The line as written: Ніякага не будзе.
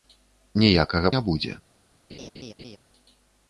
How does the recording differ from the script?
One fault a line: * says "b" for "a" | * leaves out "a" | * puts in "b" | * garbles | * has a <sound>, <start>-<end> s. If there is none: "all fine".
* has a laugh, 2.1-2.8 s